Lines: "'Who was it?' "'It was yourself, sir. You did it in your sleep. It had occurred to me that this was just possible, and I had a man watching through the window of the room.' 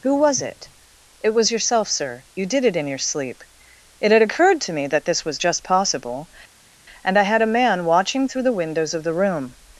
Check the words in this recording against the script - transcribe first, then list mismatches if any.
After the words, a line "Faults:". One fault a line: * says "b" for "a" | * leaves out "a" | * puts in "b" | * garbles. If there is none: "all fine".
"'Who was it?' "'It was yourself, sir. You did it in your sleep. It had occurred to me that this was just possible, and I had a man watching through the windows of the room.'
Faults:
* says "windows" for "window"